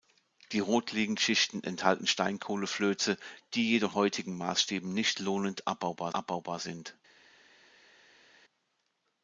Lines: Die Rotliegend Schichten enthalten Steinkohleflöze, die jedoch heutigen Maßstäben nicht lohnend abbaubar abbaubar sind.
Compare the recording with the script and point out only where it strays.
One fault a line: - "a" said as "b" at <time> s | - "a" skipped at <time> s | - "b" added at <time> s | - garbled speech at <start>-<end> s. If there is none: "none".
none